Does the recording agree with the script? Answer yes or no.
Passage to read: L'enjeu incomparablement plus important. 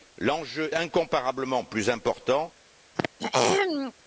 yes